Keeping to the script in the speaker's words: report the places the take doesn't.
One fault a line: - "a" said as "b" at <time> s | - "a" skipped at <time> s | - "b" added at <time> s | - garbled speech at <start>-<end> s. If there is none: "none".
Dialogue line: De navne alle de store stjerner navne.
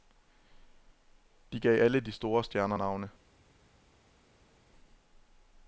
- "navne" said as "gav" at 1.6 s